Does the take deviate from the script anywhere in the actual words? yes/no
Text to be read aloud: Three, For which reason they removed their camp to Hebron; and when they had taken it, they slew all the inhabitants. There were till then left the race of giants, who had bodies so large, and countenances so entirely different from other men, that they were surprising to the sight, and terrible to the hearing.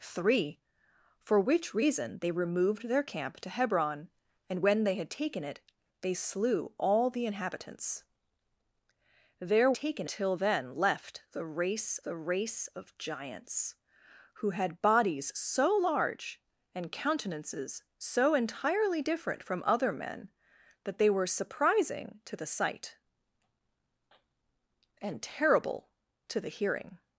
yes